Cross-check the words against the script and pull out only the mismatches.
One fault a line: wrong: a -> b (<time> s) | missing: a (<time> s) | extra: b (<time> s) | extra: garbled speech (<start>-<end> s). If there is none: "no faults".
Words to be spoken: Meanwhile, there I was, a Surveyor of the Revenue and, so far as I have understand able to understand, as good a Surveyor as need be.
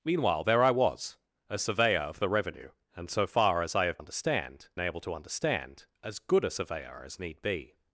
no faults